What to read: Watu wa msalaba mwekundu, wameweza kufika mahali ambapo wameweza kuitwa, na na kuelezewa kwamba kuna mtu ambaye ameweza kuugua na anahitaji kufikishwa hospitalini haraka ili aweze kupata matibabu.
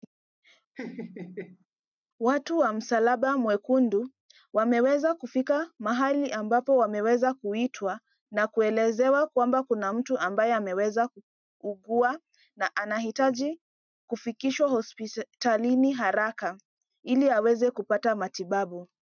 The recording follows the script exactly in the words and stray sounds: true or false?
false